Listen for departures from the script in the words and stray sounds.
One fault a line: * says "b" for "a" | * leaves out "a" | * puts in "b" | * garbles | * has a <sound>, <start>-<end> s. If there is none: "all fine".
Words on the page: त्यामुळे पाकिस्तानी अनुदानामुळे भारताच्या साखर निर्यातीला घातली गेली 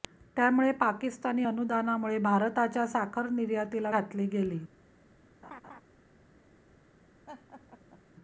* has a laugh, 5.4-5.8 s
* has a laugh, 7.3-8.0 s